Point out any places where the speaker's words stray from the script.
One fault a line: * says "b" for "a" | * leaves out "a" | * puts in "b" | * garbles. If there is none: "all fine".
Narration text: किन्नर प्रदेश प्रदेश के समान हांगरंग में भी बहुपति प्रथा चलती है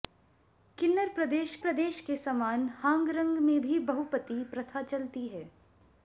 all fine